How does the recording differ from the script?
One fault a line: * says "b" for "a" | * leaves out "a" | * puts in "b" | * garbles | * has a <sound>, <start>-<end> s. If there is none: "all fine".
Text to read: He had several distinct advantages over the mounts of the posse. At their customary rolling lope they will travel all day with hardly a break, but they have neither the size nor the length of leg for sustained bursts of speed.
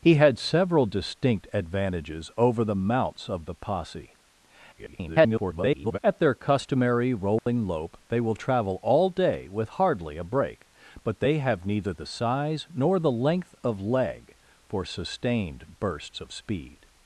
* garbles
* has a dropout, 7.4-7.5 s